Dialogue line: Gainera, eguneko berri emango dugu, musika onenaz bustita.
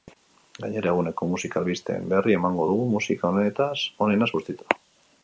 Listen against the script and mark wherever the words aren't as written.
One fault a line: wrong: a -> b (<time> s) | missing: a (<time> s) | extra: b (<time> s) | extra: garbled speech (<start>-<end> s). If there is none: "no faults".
extra: musika albisteen (1.3 s)